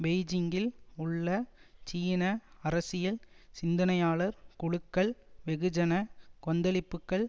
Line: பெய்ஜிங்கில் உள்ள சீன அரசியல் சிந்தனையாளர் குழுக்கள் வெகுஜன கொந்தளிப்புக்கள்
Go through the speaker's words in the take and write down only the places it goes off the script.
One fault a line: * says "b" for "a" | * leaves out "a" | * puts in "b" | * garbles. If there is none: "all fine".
all fine